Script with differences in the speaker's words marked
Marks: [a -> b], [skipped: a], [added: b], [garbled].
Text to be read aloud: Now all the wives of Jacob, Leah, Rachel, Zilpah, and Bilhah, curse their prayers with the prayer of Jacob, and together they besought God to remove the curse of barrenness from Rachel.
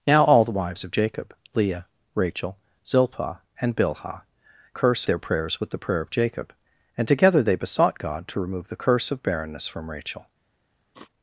Now all the wives of Jacob, Leah, Rachel, Zilpah, and Bilhah, curse their prayers with the prayer of Jacob, and together they besought God to remove the curse of barrenness from Rachel.